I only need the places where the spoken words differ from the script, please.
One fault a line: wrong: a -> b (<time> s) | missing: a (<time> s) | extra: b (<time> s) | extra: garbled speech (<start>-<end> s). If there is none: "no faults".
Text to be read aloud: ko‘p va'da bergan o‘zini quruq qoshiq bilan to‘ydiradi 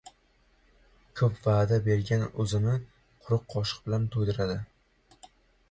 no faults